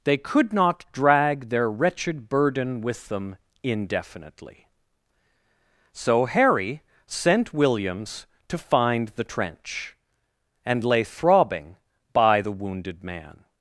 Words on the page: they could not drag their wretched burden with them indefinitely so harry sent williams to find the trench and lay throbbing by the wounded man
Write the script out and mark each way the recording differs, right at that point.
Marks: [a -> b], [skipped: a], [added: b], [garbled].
they could not drag their wretched burden with them indefinitely so harry sent williams to find the trench and lay throbbing by the wounded man